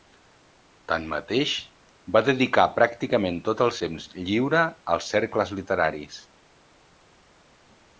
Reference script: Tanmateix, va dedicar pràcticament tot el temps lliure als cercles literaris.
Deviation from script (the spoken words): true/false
false